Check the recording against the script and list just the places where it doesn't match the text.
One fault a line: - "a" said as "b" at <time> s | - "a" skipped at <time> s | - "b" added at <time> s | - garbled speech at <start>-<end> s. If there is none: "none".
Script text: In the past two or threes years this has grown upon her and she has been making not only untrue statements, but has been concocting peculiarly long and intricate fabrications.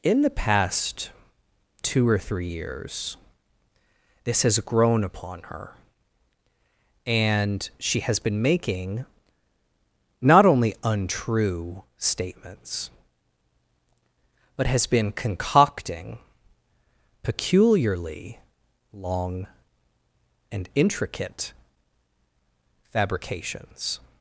- "threes" said as "three" at 2.2 s